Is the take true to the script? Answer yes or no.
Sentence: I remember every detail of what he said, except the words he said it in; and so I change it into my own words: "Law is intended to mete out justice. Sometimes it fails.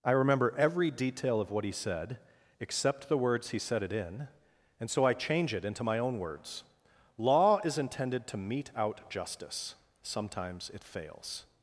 yes